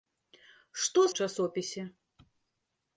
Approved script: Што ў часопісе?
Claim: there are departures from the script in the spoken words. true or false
false